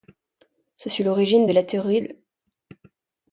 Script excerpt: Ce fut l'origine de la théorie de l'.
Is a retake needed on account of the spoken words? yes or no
yes